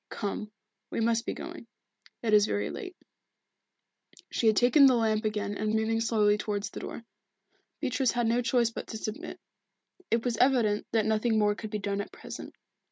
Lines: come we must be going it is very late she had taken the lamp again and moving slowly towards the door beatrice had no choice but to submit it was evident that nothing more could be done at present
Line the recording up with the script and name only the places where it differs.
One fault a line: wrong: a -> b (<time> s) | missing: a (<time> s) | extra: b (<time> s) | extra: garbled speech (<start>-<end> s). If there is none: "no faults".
no faults